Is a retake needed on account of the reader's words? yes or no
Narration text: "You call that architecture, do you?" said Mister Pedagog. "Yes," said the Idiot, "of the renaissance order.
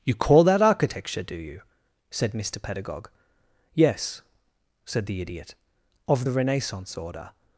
no